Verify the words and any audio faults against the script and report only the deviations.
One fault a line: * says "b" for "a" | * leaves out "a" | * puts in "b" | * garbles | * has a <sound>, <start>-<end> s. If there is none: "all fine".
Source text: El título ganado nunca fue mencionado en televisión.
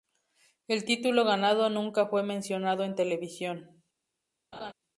* has a laugh, 4.5-4.7 s